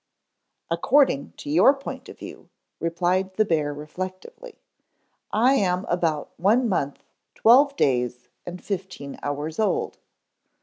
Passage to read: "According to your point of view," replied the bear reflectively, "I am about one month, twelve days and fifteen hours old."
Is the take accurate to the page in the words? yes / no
yes